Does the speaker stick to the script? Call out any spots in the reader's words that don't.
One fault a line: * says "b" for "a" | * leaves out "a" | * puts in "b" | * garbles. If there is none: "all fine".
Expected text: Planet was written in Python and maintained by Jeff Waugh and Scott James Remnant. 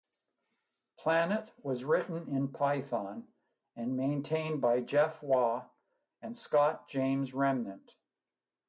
all fine